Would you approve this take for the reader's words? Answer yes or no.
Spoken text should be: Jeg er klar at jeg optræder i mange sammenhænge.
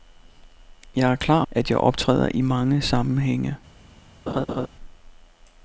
yes